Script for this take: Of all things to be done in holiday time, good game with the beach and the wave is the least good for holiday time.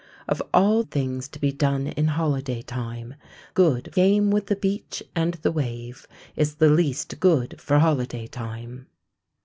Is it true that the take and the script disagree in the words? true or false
false